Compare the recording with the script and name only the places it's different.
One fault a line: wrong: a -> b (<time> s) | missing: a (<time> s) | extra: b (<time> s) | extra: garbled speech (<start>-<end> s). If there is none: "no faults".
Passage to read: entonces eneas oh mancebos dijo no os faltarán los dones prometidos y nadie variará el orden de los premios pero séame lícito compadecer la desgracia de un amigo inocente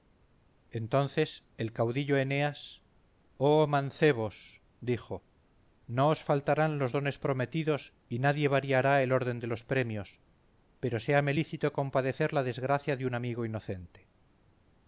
extra: el caudillo (1.6 s)